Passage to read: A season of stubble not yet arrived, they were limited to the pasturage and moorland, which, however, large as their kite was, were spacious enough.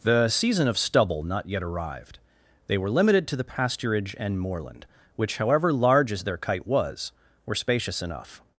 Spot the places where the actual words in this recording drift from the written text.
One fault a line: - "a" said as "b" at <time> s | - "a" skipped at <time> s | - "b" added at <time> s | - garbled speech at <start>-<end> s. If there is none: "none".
- "A" said as "The" at 0.0 s